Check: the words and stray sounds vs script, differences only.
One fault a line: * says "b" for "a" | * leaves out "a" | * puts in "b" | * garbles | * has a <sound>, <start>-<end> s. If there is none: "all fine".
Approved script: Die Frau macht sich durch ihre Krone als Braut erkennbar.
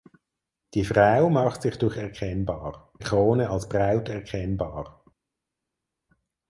* says "erkennbar" for "ihre"